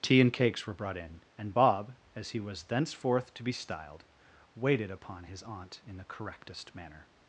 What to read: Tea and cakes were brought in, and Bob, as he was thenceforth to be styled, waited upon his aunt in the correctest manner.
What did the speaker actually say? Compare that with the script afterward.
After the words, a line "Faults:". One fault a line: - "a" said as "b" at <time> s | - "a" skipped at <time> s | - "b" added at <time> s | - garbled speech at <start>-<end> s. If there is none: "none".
Tea and cakes were brought in, and Bob, as he was thenceforth to be styled, waited upon his aunt in the correctest manner.
Faults:
none